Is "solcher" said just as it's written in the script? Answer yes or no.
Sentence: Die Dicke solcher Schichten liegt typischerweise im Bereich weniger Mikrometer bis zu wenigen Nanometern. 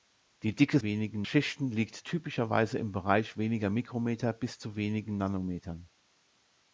no